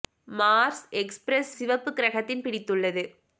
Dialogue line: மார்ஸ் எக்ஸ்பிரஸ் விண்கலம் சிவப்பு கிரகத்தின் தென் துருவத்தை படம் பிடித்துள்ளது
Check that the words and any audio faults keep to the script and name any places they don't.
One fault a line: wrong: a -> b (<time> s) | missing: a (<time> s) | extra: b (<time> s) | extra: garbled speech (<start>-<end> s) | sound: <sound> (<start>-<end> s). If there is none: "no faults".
missing: விண்கலம் (1.5 s)
missing: தென் துருவத்தை படம் (2.4 s)